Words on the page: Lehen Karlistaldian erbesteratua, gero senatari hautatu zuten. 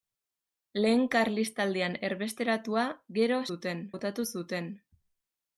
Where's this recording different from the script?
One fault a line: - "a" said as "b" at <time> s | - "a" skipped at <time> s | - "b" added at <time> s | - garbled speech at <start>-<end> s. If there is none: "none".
- "senatari" said as "zuten" at 3.5 s